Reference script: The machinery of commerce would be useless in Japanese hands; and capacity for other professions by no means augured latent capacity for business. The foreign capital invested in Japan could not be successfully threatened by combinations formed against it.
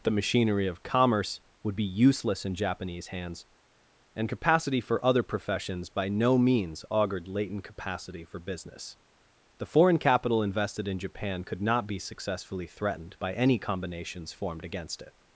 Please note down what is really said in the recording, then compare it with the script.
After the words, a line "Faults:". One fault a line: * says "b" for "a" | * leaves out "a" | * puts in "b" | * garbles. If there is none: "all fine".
The machinery of commerce would be useless in Japanese hands; and capacity for other professions by no means augured latent capacity for business. The foreign capital invested in Japan could not be successfully threatened by any combinations formed against it.
Faults:
* puts in "any"